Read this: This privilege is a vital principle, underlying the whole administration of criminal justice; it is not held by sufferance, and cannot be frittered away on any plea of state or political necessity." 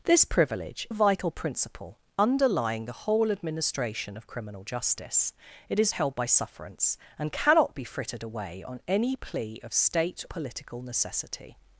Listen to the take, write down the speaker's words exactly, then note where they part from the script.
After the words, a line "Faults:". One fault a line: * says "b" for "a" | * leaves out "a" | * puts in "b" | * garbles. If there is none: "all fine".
This privilege a vital principle, underlying the whole administration of criminal justice; it is held by sufferance, and cannot be frittered away on any plea of state political necessity."
Faults:
* leaves out "is"
* leaves out "not"
* leaves out "or"